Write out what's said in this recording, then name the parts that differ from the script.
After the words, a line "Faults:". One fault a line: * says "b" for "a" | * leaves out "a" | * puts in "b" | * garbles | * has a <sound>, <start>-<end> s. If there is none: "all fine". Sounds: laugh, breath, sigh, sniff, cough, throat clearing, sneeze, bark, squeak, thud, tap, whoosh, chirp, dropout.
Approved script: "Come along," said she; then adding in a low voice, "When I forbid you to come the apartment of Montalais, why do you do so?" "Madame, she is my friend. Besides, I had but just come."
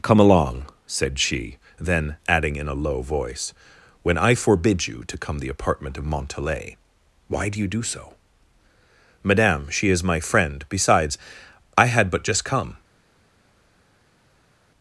"Come along," said she; then adding in a low voice, "When I forbid you to come the apartment of Montalais, why do you do so?" "Madame, she is my friend. Besides, I had but just come."
Faults:
all fine